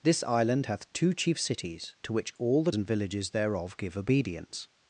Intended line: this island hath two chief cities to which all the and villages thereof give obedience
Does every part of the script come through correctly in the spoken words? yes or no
yes